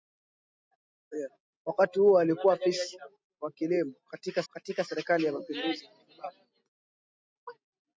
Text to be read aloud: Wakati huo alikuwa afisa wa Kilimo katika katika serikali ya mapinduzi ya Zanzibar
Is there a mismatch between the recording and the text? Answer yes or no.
no